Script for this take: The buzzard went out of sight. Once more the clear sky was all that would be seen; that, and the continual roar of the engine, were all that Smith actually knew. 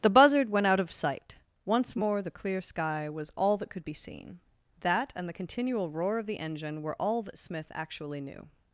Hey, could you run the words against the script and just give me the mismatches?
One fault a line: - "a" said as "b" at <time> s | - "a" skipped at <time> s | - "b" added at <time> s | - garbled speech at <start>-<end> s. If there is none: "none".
- "would" said as "could" at 3.7 s